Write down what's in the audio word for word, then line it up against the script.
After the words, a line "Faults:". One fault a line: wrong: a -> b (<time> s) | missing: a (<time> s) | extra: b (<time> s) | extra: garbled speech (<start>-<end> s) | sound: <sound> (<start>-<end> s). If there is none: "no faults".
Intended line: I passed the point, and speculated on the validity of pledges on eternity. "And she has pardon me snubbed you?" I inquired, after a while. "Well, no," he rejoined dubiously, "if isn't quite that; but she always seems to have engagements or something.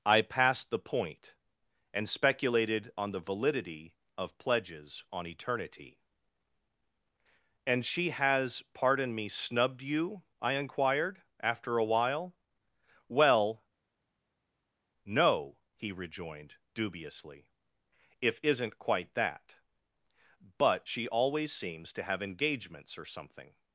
I passed the point, and speculated on the validity of pledges on eternity. "And she has pardon me snubbed you?" I inquired, after a while. "Well, no," he rejoined dubiously, "if isn't quite that; but she always seems to have engagements or something.
Faults:
no faults